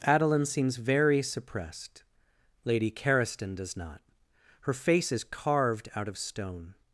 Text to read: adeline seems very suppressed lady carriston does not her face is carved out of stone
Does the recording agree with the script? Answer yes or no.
yes